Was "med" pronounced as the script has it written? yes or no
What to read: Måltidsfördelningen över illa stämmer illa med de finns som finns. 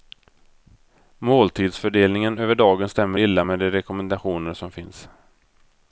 yes